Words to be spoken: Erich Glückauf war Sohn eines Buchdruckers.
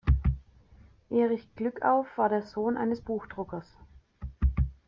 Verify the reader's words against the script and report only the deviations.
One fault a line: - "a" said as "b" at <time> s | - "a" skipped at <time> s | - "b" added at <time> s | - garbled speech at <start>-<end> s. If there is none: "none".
- "der" added at 2.3 s